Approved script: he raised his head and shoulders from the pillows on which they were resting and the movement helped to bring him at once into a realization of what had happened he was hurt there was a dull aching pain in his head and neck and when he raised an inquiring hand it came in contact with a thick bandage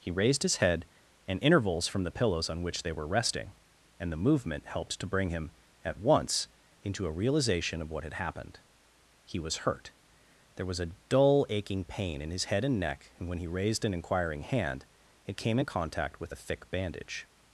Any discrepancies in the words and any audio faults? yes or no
yes